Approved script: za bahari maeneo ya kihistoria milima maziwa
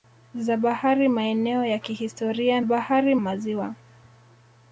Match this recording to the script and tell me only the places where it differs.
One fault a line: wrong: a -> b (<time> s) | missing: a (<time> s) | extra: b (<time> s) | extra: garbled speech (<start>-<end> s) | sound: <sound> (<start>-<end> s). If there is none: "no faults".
wrong: milima -> bahari (2.6 s)